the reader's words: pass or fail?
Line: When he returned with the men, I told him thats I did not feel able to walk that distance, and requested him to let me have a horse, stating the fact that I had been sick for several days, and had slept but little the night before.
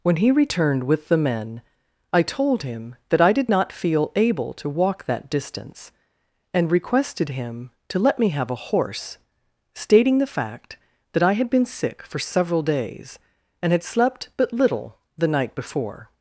fail